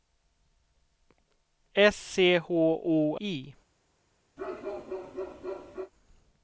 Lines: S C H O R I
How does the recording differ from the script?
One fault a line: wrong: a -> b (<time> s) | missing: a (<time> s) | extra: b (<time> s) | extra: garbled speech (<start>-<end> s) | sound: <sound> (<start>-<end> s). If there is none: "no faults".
missing: R (3.2 s)
sound: bark (4.4-5.9 s)